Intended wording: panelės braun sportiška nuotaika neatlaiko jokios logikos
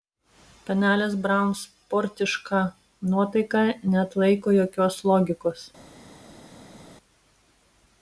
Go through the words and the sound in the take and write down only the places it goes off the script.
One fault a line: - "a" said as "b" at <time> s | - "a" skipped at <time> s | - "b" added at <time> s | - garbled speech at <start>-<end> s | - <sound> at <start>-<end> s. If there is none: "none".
none